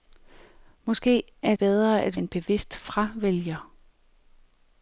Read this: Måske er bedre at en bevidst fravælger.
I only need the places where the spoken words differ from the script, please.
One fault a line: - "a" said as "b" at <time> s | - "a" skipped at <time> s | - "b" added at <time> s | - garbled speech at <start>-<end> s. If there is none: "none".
none